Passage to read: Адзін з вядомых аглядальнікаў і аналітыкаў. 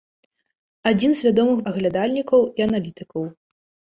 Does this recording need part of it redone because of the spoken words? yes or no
no